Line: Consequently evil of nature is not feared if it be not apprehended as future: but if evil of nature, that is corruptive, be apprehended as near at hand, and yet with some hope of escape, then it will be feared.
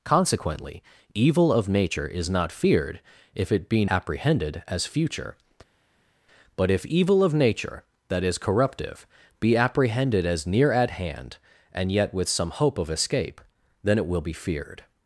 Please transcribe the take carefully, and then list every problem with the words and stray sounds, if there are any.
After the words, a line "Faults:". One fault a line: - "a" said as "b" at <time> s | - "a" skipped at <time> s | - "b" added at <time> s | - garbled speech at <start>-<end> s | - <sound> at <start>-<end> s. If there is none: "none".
Consequently evil of nature is not feared if it be apprehended as future: but if evil of nature, that is corruptive, be apprehended as near at hand, and yet with some hope of escape, then it will be feared.
Faults:
- "not" skipped at 3.9 s